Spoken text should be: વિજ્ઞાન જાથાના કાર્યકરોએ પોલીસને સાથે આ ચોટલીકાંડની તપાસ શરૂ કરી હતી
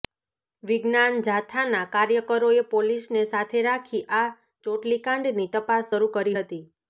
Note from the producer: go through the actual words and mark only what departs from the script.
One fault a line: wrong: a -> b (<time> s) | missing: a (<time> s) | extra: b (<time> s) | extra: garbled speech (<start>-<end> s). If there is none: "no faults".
extra: રાખી (3.7 s)